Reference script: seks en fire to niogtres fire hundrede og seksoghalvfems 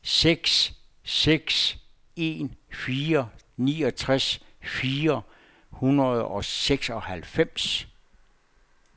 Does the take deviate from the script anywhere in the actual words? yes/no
yes